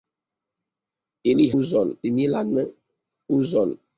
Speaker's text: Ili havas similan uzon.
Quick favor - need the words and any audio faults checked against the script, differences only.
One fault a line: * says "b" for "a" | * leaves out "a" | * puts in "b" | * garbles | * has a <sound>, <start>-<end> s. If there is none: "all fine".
* says "uzon" for "havas"